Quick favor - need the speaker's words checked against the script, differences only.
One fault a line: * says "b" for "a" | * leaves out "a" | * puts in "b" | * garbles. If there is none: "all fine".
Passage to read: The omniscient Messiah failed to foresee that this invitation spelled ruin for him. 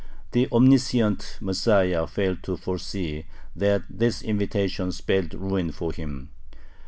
all fine